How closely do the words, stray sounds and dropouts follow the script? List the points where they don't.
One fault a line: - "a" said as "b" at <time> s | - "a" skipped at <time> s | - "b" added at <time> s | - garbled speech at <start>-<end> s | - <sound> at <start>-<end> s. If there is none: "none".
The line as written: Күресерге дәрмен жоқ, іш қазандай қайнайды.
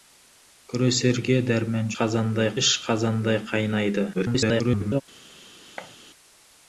- "жоқ" said as "қазандай" at 2.0 s
- garbled speech at 4.1-5.0 s
- thud at 5.8-6.0 s